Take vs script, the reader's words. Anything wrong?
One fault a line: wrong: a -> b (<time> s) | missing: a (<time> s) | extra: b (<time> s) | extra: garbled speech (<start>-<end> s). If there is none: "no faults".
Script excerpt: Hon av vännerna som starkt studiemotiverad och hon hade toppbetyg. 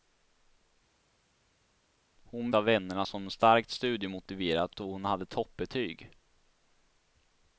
no faults